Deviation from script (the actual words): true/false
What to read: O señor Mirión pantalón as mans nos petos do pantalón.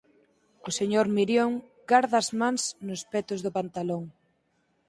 true